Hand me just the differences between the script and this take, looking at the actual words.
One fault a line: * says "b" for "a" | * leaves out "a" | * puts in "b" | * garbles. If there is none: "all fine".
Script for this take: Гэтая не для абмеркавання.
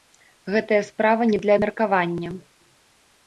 * puts in "справа"